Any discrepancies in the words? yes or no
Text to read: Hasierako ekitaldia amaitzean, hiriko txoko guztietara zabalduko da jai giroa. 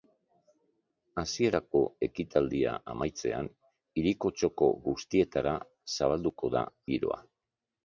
yes